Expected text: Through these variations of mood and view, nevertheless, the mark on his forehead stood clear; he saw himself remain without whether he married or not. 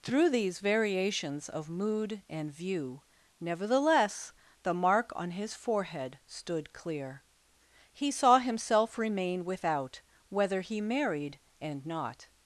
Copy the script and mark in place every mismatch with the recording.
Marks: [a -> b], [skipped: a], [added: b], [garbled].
Through these variations of mood and view, nevertheless, the mark on his forehead stood clear; he saw himself remain without whether he married [or -> and] not.